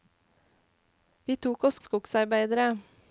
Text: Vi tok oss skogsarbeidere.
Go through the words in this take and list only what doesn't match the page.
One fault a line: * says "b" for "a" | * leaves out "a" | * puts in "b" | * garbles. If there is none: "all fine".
all fine